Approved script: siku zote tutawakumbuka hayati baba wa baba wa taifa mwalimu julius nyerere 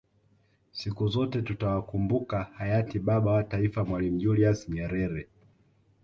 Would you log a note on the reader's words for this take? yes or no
yes